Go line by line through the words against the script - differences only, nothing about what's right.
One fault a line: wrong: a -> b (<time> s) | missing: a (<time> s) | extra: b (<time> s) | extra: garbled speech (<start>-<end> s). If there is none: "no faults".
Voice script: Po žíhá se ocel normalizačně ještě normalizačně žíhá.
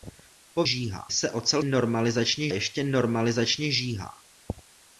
no faults